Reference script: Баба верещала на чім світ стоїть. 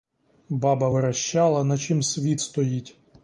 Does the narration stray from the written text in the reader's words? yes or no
no